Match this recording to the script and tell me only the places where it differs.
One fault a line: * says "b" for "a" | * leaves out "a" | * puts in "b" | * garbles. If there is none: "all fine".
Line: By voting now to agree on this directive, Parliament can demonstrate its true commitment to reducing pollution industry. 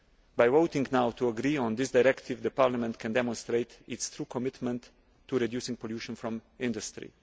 * puts in "from"